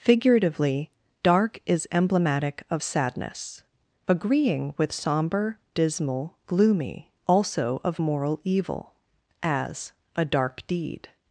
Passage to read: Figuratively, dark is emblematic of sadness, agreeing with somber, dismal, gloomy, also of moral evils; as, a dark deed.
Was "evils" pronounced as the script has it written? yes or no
no